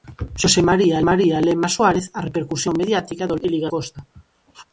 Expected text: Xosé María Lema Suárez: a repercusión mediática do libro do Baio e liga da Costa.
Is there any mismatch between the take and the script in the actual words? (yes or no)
yes